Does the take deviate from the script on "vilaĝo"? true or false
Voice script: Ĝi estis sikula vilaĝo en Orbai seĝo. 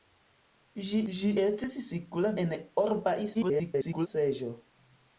true